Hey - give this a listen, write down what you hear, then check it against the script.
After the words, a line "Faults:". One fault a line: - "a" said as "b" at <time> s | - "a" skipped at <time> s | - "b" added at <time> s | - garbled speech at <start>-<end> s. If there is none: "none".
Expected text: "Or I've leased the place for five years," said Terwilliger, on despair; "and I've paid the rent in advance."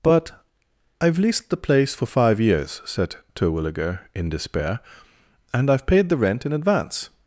"But I've leased the place for five years," said Terwilliger, in despair; "and I've paid the rent in advance."
Faults:
- "Or" said as "But" at 0.0 s
- "on" said as "in" at 4.1 s